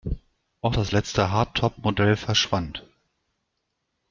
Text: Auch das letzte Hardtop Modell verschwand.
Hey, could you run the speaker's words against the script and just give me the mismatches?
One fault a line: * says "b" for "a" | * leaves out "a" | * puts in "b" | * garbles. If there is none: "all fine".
all fine